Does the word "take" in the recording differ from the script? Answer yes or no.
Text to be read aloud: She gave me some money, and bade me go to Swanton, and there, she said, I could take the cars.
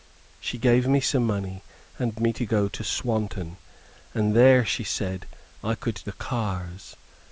yes